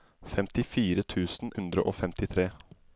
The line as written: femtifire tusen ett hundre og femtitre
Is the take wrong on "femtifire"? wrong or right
right